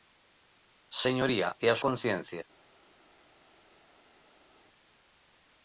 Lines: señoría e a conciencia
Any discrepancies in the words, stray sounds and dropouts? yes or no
no